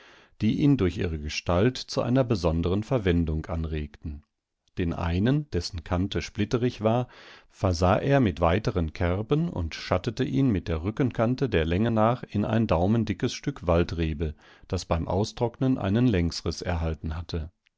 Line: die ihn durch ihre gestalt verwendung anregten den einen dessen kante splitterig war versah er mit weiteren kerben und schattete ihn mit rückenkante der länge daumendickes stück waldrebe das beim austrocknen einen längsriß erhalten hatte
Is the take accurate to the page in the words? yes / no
no